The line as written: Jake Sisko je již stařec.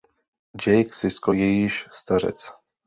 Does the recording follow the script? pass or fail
pass